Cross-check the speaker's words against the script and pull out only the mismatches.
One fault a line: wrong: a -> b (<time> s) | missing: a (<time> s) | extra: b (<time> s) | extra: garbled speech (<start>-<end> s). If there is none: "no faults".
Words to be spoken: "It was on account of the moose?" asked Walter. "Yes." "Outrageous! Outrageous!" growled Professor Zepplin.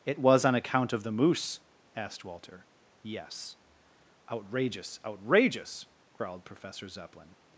no faults